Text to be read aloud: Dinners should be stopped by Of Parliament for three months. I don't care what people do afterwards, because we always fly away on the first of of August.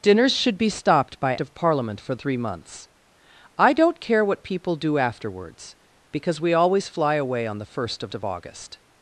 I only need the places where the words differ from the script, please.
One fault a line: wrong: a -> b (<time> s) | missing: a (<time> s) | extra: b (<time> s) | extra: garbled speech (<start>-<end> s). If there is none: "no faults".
no faults